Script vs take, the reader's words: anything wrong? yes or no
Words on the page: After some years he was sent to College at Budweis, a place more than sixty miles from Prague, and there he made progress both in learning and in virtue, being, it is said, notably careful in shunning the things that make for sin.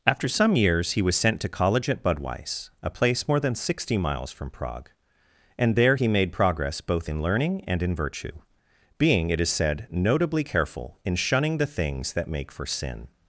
no